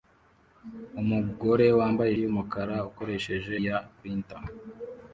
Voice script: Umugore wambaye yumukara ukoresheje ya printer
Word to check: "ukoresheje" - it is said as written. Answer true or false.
true